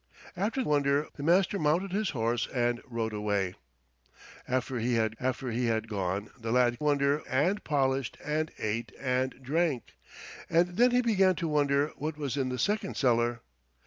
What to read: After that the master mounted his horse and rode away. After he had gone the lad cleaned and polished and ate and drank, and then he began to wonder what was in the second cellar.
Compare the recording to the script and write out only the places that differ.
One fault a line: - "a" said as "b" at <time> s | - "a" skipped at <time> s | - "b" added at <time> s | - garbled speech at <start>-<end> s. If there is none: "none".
- "that" said as "wonder" at 0.6 s
- "after he had" added at 5.2 s
- "cleaned" said as "wonder" at 6.8 s